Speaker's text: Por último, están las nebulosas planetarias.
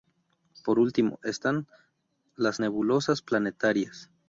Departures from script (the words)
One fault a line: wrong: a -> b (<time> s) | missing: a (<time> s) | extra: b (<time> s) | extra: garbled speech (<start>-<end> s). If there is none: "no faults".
no faults